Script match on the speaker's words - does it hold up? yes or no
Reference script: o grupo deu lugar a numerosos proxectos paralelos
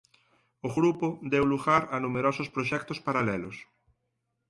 yes